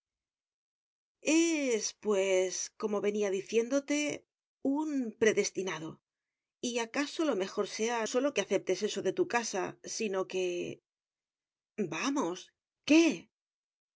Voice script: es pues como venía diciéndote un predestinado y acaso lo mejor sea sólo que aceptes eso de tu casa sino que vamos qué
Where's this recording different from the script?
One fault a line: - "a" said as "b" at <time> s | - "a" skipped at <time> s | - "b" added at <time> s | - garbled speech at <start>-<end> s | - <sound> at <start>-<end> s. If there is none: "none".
none